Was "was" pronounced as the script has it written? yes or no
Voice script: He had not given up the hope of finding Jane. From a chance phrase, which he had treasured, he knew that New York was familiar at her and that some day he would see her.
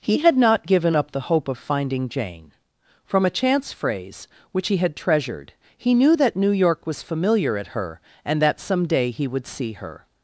yes